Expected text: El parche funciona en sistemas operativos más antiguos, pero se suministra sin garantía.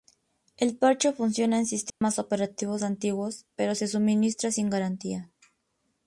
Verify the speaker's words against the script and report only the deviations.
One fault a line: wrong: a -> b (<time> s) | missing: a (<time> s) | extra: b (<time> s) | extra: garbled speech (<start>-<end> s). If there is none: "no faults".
missing: más (2.8 s)